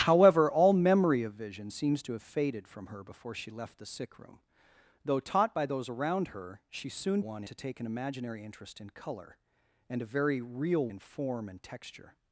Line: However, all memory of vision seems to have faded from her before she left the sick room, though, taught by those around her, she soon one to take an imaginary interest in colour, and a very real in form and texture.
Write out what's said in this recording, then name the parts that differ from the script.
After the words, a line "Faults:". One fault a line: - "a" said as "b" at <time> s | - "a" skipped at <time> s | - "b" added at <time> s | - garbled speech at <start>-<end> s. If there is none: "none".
However, all memory of vision seems to have faded from her before she left the sick room, though, taught by those around her, she soon one to take an imaginary interest in colour, and a very real in form and texture.
Faults:
none